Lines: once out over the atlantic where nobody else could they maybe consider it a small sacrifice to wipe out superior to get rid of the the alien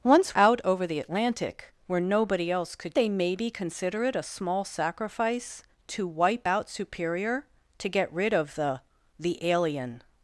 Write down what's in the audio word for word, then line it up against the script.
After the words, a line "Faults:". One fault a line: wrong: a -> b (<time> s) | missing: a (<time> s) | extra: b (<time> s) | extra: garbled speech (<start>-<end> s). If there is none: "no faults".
once out over the atlantic where nobody else could they maybe consider it a small sacrifice to wipe out superior to get rid of the the alien
Faults:
no faults